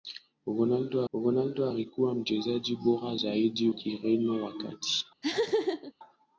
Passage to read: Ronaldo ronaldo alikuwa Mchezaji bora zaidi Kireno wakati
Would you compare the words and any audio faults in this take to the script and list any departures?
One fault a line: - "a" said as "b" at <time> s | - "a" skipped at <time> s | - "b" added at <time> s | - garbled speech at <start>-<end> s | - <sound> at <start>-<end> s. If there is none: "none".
- laugh at 5.2-5.9 s